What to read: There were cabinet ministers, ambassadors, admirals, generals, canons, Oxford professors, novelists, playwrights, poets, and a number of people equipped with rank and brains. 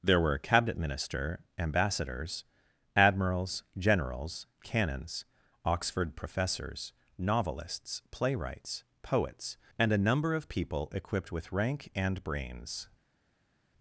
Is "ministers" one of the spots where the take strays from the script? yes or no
yes